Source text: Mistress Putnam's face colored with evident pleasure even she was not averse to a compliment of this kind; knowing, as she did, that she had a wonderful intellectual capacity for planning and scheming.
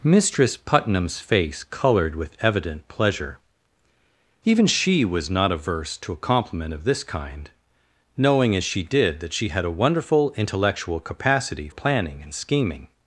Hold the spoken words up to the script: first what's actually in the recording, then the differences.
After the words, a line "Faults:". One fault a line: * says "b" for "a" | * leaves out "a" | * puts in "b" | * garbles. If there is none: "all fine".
Mistress Putnam's face colored with evident pleasure even she was not averse to a compliment of this kind; knowing, as she did, that she had a wonderful intellectual capacity planning and scheming.
Faults:
* leaves out "for"